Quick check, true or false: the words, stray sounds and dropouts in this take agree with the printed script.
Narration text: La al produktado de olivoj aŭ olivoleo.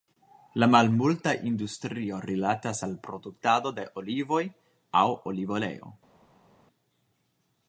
false